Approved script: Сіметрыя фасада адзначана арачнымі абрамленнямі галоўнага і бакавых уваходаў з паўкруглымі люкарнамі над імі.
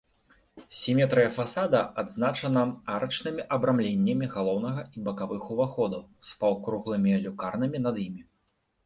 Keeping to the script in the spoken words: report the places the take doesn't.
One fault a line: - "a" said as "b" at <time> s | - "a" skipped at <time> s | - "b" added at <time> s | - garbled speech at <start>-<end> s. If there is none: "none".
none